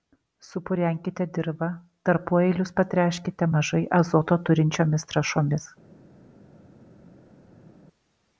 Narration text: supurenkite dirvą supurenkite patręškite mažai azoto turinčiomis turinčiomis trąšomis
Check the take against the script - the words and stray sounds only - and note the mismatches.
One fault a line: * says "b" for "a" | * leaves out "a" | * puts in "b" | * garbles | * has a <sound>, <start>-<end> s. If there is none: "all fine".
* says "tarpueilius" for "supurenkite"
* leaves out "turinčiomis"